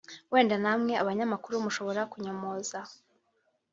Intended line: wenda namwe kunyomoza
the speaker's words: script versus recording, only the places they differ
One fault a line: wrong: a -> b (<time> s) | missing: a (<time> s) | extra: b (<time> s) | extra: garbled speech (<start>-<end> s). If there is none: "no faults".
extra: abanyamakuru mushobora (1.0 s)